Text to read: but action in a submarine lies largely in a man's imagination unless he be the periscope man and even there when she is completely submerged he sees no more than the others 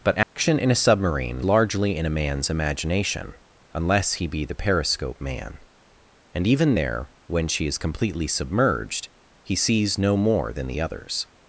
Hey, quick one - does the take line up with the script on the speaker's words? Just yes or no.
no